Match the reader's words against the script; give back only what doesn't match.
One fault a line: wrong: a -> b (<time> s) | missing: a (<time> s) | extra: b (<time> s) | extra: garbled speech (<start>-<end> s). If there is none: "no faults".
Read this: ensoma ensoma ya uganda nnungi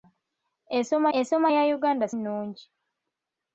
no faults